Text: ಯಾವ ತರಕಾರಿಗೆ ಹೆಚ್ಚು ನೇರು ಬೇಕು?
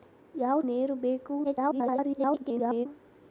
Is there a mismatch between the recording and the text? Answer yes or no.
yes